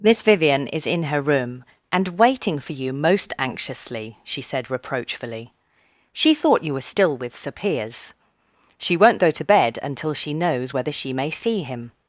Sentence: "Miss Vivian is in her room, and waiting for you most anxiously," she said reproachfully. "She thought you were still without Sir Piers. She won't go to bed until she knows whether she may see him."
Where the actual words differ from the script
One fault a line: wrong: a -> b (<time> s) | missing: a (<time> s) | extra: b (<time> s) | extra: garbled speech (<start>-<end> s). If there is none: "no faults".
wrong: without -> with (7.2 s)